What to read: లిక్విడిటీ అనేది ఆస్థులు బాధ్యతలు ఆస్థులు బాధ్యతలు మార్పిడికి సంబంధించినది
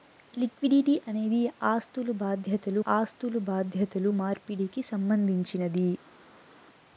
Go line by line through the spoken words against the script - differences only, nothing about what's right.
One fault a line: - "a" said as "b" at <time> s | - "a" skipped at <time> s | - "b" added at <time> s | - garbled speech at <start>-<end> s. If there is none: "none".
none